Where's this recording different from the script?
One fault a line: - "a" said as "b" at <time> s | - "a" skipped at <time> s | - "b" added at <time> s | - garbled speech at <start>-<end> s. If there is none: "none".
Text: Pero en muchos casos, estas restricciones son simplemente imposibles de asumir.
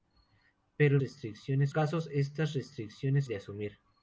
- "muchos" said as "restricciones" at 1.0 s
- "son simplemente imposibles" skipped at 3.3 s